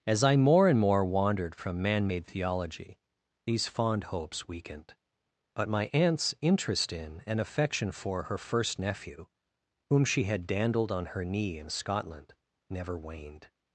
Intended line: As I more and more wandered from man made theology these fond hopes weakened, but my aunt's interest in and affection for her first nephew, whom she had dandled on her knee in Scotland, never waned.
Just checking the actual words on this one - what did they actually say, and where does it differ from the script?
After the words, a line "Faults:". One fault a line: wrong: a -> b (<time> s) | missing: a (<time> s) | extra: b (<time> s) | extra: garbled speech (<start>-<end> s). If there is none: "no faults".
As I more and more wandered from man made theology these fond hopes weakened, but my aunt's interest in and affection for her first nephew, whom she had dandled on her knee in Scotland, never waned.
Faults:
no faults